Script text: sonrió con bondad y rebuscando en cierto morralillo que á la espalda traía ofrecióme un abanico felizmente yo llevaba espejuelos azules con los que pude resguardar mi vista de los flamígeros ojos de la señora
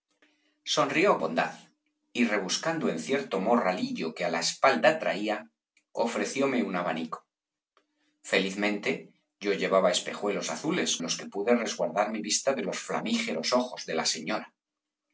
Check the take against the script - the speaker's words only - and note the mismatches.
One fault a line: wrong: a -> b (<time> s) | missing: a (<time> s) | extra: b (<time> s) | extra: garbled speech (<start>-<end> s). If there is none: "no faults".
missing: con (1.2 s)
missing: con (10.9 s)